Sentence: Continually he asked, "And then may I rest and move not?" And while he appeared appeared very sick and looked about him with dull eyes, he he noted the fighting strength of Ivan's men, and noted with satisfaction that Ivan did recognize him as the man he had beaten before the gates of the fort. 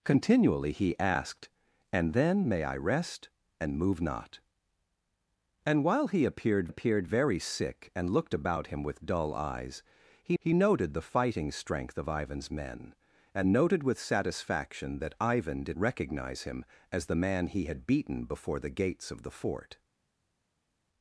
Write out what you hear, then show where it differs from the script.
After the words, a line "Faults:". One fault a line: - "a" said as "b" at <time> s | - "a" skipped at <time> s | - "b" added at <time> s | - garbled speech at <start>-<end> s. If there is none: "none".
Continually he asked, "And then may I rest and move not?" And while he appeared appeared very sick and looked about him with dull eyes, he he noted the fighting strength of Ivan's men, and noted with satisfaction that Ivan did recognize him as the man he had beaten before the gates of the fort.
Faults:
none